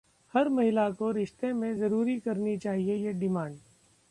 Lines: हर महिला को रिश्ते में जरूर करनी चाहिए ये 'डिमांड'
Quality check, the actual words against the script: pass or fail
pass